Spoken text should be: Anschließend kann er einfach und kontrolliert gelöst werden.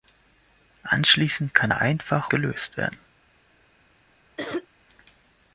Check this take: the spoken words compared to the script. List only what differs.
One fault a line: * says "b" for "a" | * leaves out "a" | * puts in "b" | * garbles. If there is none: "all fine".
* leaves out "und kontrolliert"